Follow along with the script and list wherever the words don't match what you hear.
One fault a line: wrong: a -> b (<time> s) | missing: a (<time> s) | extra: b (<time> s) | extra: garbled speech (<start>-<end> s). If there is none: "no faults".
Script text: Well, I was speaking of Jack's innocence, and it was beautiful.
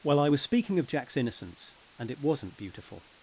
wrong: was -> wasn't (2.2 s)